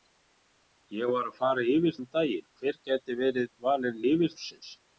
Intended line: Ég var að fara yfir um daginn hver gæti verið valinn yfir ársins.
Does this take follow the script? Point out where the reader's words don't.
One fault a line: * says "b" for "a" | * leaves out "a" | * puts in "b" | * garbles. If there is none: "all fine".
all fine